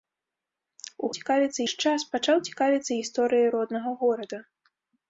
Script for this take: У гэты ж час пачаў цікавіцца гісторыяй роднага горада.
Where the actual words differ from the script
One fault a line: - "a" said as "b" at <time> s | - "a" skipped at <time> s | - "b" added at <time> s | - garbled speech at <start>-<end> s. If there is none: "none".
- "гэты" said as "цікавіцца" at 1.2 s